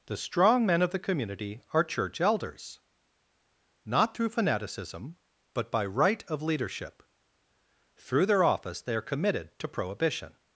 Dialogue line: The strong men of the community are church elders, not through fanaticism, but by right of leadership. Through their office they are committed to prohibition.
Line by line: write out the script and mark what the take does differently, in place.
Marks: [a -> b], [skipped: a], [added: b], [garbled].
The strong men of the community are church elders, not through fanaticism, but by right of leadership. Through their office they are committed to prohibition.